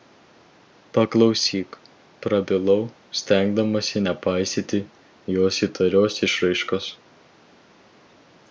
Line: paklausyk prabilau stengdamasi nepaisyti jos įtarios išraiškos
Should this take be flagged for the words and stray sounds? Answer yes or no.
no